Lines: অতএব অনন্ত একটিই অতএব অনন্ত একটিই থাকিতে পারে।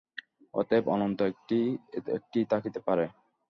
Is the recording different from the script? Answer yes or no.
yes